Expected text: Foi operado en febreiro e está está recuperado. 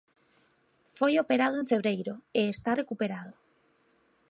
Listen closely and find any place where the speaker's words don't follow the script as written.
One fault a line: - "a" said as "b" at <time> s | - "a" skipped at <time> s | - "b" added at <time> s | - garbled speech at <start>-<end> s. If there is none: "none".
- "está" skipped at 2.7 s